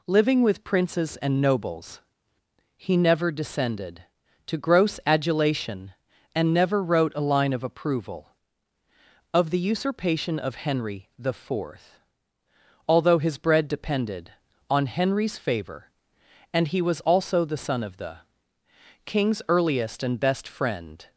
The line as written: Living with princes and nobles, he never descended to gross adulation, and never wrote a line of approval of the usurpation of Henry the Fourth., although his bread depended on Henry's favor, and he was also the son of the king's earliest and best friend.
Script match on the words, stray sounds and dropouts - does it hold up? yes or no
yes